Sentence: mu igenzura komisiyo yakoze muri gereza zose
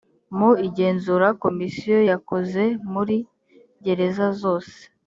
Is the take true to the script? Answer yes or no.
yes